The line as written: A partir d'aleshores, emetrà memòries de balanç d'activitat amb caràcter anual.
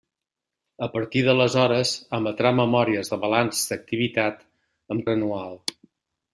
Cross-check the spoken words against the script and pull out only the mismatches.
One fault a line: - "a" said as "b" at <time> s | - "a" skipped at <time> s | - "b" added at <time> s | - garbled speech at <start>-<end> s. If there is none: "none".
- "caràcter" skipped at 5.0 s